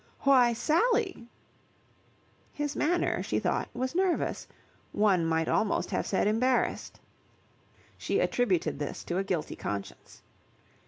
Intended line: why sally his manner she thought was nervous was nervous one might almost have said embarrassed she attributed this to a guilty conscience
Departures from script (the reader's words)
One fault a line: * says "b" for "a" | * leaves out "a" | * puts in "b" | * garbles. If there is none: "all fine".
* leaves out "was nervous"